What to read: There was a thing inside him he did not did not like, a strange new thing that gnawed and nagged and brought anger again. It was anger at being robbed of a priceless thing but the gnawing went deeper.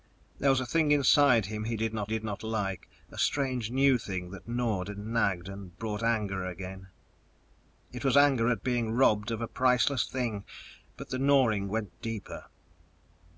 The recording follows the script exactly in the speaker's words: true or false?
true